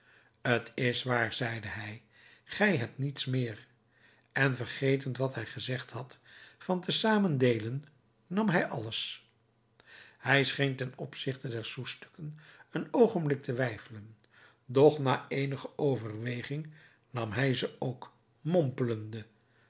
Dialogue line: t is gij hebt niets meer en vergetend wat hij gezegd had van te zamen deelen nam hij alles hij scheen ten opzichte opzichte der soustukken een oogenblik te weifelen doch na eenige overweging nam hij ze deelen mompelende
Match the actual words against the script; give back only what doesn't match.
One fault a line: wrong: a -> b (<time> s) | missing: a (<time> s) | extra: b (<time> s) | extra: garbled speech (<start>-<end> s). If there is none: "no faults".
extra: waar zeide hij (1.0 s)
missing: opzichte (11.5 s)
wrong: deelen -> ook (17.8 s)